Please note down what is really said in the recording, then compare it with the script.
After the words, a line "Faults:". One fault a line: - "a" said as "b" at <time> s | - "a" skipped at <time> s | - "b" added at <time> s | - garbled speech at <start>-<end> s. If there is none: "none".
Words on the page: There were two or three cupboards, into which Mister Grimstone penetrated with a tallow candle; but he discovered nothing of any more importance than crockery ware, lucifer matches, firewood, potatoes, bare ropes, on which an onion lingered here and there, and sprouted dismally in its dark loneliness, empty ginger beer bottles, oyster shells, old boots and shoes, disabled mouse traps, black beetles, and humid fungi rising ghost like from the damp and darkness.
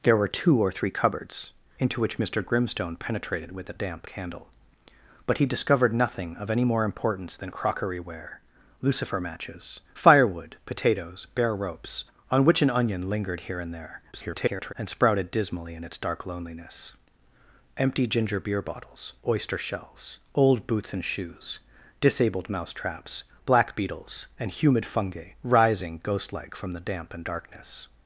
There were two or three cupboards, into which Mister Grimstone penetrated with a damp candle; but he discovered nothing of any more importance than crockery ware, lucifer matches, firewood, potatoes, bare ropes, on which an onion lingered here and there, [garbled] and sprouted dismally in its dark loneliness, empty ginger beer bottles, oyster shells, old boots and shoes, disabled mouse traps, black beetles, and humid fungi rising ghost like from the damp and darkness.
Faults:
- "tallow" said as "damp" at 3.7 s
- garbled speech at 14.1-14.7 s